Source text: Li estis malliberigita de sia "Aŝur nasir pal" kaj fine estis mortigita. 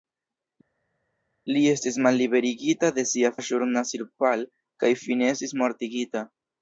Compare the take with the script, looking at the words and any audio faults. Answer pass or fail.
pass